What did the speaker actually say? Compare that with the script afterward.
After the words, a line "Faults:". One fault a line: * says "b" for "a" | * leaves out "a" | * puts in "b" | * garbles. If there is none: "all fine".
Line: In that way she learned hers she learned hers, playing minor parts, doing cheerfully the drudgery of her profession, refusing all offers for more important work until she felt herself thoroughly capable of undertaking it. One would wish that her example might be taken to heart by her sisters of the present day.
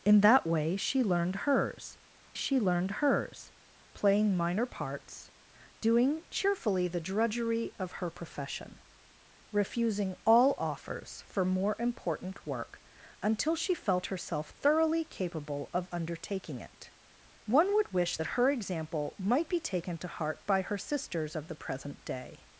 In that way she learned hers she learned hers, playing minor parts, doing cheerfully the drudgery of her profession, refusing all offers for more important work until she felt herself thoroughly capable of undertaking it. One would wish that her example might be taken to heart by her sisters of the present day.
Faults:
all fine